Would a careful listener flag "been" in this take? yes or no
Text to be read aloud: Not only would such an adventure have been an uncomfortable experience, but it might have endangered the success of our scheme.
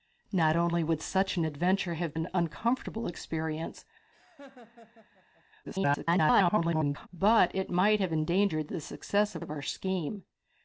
yes